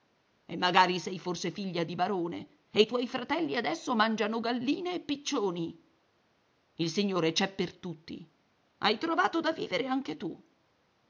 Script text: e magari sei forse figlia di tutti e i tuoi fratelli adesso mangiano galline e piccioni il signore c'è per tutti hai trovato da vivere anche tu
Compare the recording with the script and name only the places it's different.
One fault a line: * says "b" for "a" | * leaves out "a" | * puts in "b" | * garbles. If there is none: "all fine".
* says "barone" for "tutti"